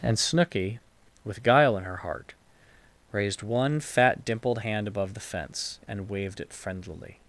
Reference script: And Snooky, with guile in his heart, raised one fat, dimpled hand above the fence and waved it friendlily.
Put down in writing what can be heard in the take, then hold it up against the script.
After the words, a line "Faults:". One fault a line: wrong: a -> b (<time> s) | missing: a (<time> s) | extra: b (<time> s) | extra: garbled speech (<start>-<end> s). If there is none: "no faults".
And Snooky, with guile in her heart, raised one fat, dimpled hand above the fence and waved it friendlily.
Faults:
wrong: his -> her (1.8 s)